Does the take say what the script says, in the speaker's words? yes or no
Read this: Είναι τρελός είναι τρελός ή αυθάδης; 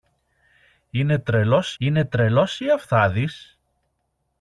yes